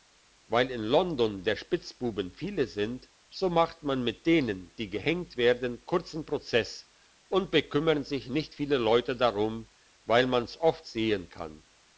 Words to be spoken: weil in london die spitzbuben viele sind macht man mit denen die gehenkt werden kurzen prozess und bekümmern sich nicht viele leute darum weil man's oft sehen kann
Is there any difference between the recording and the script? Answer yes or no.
yes